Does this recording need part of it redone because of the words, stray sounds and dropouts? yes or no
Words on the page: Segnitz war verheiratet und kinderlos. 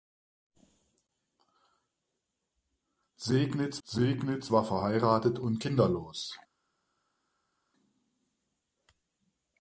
yes